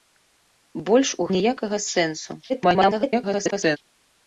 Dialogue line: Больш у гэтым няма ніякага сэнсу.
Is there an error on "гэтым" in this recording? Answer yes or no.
yes